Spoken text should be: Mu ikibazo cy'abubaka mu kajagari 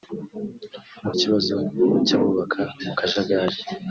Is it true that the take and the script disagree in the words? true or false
false